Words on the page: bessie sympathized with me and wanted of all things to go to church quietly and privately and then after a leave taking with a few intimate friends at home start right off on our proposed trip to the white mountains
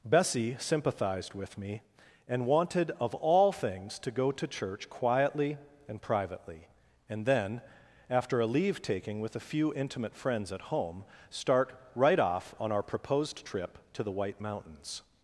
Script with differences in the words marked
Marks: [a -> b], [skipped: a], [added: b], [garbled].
bessie sympathized with me and wanted of all things to go to church quietly and privately and then after a leave taking with a few intimate friends at home start right off on our proposed trip to the white mountains